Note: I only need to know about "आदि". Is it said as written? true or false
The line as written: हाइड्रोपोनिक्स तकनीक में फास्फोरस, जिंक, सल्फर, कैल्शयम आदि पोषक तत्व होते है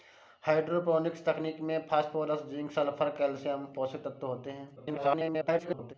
false